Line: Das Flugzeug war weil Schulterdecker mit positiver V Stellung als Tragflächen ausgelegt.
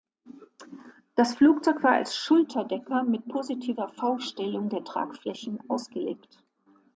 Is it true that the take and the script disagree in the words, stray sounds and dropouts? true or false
true